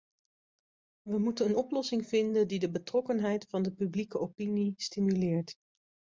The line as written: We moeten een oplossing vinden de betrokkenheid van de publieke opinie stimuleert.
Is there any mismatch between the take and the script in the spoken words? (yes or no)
yes